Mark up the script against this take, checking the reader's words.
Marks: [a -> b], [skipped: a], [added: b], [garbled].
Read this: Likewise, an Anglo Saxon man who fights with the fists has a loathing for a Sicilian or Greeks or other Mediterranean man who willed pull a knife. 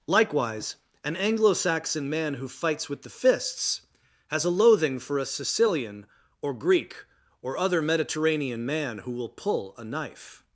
Likewise, an Anglo Saxon man who fights with the fists has a loathing for a Sicilian or [Greeks -> Greek] or other Mediterranean man who [willed -> will] pull a knife.